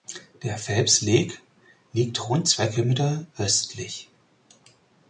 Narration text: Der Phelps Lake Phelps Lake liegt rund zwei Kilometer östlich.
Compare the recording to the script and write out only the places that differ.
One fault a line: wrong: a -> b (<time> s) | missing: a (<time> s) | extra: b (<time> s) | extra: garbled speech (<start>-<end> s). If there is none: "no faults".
missing: Phelps Lake (1.4 s)